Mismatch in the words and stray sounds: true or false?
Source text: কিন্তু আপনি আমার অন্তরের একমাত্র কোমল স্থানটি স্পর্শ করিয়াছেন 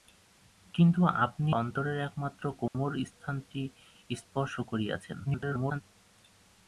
true